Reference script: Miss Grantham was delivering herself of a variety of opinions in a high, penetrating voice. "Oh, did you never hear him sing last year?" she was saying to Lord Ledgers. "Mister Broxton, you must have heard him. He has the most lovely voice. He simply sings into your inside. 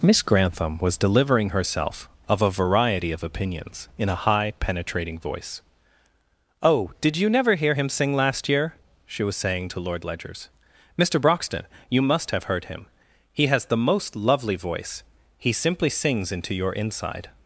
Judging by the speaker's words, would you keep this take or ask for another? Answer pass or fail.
pass